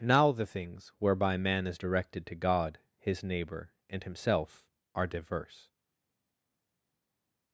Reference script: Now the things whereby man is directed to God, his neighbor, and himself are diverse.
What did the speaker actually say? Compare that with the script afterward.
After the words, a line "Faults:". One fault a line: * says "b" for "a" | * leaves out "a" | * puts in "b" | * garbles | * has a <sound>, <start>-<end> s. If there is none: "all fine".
Now the things whereby man is directed to God, his neighbor, and himself are diverse.
Faults:
all fine